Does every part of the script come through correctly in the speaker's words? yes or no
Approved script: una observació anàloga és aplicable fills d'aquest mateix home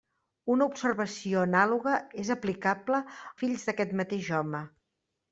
yes